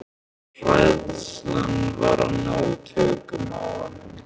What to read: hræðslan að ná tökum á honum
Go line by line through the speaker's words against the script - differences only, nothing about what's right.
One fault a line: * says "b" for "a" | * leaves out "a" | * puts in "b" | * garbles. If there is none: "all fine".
* puts in "var"